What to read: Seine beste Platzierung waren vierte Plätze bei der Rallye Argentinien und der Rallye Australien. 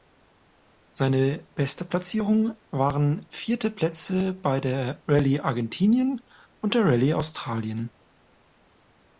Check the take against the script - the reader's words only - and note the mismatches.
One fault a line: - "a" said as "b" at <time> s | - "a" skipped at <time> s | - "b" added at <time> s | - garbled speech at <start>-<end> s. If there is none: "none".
none